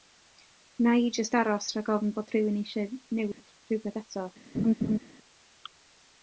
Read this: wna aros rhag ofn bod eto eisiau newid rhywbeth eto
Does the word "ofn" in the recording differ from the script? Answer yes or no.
no